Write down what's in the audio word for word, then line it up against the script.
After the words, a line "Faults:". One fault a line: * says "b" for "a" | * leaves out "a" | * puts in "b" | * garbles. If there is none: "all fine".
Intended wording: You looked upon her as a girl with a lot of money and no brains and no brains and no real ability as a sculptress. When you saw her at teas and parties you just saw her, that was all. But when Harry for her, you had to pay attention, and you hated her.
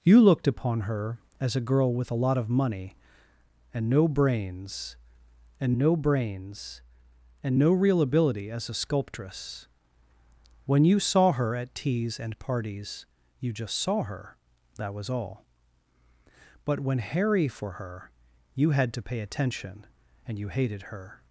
You looked upon her as a girl with a lot of money and no brains and no brains and no real ability as a sculptress. When you saw her at teas and parties you just saw her, that was all. But when Harry for her, you had to pay attention, and you hated her.
Faults:
all fine